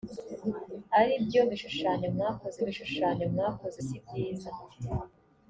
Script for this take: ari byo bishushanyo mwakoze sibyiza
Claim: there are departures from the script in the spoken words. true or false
true